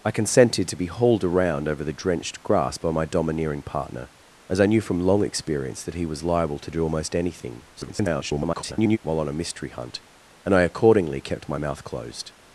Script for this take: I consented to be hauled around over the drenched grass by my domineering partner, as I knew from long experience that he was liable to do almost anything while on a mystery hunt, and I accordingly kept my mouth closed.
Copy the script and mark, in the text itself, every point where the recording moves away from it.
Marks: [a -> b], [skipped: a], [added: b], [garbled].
I consented to be hauled around over the drenched grass by my domineering partner, as I knew from long experience that he was liable to do almost anything [garbled] while on a mystery hunt, and I accordingly kept my mouth closed.